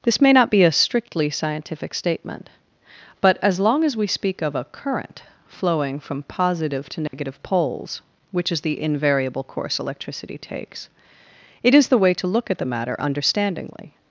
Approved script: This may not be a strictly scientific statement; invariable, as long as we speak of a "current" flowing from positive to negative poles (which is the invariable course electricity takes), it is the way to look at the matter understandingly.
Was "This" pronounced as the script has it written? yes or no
yes